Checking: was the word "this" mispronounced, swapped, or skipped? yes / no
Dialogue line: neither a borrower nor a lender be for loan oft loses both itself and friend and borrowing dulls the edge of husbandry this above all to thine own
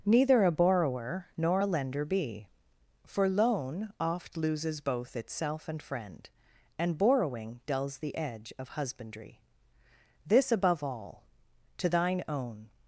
no